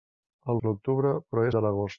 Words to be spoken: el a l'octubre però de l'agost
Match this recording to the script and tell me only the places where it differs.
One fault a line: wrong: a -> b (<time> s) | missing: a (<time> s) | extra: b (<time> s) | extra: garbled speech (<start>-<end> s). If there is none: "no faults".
no faults